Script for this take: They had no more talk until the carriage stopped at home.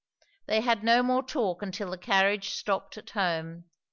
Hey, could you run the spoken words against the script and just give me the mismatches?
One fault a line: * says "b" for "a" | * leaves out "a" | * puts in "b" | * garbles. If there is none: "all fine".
all fine